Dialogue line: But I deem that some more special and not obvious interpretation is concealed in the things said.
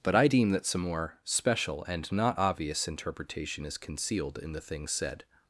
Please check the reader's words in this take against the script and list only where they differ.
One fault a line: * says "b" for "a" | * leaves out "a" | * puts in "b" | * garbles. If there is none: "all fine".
all fine